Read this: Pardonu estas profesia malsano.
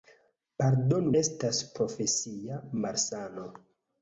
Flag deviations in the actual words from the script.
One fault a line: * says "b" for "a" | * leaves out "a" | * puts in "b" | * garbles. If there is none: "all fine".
all fine